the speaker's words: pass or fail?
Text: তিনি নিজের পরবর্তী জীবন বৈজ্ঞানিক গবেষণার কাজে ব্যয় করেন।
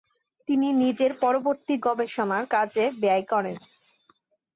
fail